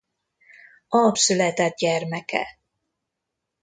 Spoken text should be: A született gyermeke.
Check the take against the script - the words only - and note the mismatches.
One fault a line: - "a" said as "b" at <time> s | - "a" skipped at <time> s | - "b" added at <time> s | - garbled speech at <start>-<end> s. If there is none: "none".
none